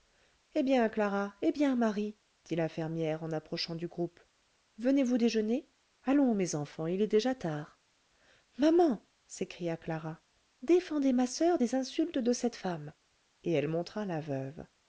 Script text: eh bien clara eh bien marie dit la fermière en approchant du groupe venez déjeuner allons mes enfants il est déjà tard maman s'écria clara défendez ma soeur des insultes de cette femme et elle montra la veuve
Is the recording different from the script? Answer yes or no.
yes